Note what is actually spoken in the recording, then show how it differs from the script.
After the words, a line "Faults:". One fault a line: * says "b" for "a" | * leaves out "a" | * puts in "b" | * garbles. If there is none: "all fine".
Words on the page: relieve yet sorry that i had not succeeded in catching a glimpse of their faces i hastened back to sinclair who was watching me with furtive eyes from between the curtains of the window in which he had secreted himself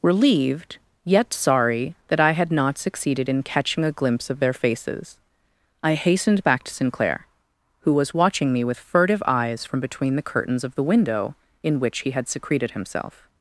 relieved yet sorry that i had not succeeded in catching a glimpse of their faces i hastened back to sinclair who was watching me with furtive eyes from between the curtains of the window in which he had secreted himself
Faults:
* says "relieved" for "relieve"